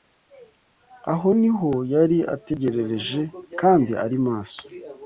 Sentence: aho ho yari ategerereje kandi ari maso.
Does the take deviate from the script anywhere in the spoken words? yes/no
yes